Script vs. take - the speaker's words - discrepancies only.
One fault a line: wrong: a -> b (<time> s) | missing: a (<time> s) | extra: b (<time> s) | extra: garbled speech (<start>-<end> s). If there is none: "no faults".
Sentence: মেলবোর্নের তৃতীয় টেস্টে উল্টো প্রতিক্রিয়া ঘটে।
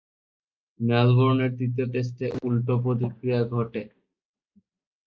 no faults